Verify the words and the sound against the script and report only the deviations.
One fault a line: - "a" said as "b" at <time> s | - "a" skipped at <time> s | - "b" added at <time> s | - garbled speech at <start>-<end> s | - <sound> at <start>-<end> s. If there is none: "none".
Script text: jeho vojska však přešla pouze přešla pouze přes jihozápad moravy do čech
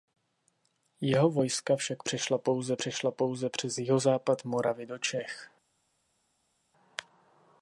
none